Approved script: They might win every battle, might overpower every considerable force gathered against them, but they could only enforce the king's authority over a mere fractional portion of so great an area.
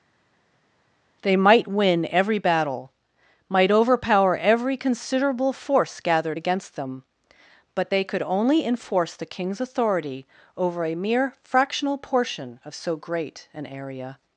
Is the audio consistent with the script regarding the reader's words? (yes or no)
yes